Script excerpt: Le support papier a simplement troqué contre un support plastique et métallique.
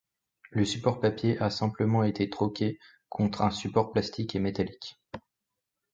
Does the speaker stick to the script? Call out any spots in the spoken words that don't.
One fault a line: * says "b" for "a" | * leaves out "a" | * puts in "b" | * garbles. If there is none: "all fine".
* puts in "été"